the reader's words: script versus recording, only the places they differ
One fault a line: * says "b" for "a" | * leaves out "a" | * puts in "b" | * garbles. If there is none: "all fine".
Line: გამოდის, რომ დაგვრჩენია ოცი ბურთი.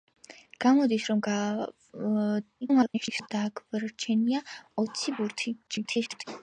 * garbles
* garbles